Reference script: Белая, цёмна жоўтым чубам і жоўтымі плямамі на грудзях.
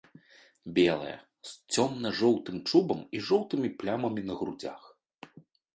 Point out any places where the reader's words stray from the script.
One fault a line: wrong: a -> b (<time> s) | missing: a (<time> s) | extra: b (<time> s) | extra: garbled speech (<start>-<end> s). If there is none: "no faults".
extra: з (1.5 s)